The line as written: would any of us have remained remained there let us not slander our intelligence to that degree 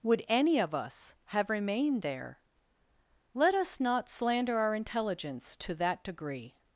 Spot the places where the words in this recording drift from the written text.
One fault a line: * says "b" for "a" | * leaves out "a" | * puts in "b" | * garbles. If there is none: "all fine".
* leaves out "remained"